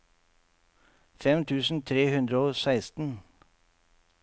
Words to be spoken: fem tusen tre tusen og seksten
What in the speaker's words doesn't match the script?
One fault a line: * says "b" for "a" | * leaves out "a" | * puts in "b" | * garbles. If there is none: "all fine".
* says "hundre" for "tusen"